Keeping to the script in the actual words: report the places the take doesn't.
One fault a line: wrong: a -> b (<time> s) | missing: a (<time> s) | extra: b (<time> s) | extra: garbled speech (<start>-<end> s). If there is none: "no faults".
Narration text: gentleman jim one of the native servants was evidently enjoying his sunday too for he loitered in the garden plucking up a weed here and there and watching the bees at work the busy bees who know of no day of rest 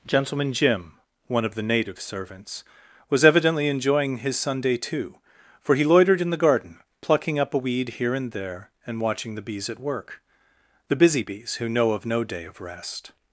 no faults